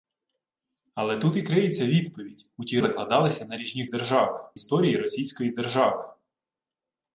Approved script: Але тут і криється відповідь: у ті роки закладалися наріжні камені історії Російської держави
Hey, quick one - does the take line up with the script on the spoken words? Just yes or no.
no